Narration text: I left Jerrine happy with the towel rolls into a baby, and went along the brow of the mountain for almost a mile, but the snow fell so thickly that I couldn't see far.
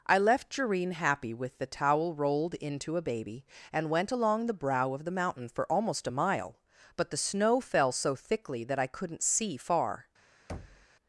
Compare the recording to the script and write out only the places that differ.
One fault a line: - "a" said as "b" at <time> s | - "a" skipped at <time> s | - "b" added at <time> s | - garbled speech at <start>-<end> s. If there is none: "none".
- "rolls" said as "rolled" at 2.1 s